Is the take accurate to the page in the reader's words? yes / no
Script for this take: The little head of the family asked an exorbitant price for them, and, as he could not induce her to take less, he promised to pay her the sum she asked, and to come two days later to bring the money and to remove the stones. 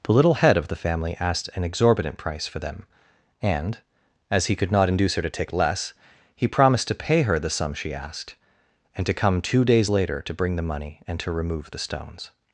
yes